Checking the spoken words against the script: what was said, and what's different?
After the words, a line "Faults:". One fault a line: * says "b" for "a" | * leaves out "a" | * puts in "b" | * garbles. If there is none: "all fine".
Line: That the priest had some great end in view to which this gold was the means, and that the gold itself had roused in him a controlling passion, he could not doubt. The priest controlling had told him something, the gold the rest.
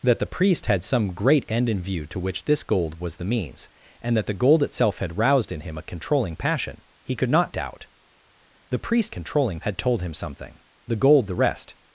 That the priest had some great end in view to which this gold was the means, and that the gold itself had roused in him a controlling passion, he could not doubt. The priest controlling had told him something, the gold the rest.
Faults:
all fine